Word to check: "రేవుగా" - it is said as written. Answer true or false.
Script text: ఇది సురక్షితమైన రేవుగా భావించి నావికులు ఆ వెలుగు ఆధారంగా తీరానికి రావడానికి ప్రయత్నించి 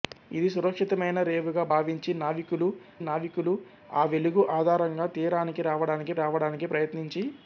true